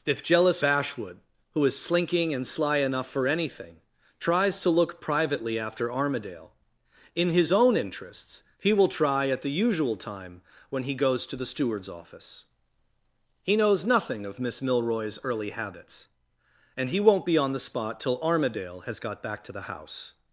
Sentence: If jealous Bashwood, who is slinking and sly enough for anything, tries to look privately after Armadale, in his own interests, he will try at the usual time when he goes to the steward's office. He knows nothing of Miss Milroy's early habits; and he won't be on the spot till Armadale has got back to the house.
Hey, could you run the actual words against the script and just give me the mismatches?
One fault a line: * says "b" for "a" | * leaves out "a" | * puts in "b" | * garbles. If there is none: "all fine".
all fine